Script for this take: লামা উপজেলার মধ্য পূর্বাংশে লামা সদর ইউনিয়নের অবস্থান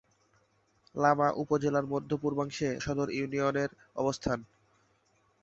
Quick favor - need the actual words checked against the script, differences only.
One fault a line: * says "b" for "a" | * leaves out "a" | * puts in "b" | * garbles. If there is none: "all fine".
* leaves out "লামা"